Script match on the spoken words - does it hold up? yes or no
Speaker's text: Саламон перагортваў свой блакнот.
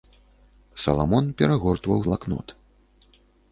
no